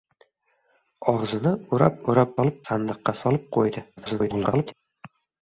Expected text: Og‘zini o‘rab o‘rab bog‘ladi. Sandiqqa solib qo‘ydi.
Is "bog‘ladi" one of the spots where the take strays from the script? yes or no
yes